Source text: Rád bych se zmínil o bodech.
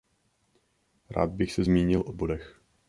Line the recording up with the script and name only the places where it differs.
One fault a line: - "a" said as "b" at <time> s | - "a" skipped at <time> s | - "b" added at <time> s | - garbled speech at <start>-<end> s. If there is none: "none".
none